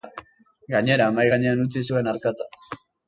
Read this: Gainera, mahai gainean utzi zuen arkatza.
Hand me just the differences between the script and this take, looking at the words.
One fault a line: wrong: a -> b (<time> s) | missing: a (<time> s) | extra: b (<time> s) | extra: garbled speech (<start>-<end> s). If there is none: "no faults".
no faults